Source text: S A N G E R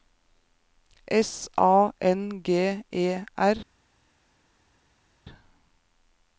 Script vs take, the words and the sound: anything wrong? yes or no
no